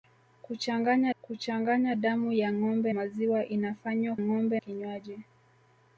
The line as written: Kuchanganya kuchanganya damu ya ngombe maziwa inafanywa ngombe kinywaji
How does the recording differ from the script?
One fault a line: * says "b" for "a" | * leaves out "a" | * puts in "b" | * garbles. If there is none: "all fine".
all fine